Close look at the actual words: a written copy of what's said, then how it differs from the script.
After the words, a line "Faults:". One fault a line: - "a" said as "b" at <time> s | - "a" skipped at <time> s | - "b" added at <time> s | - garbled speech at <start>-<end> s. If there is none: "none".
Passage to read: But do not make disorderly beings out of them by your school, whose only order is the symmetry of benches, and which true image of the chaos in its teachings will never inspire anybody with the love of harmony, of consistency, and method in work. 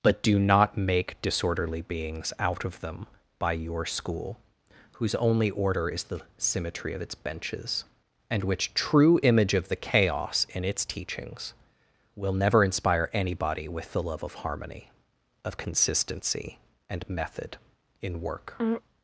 But do not make disorderly beings out of them by your school, whose only order is the symmetry of its benches, and which true image of the chaos in its teachings will never inspire anybody with the love of harmony, of consistency, and method in work.
Faults:
- "its" added at 7.0 s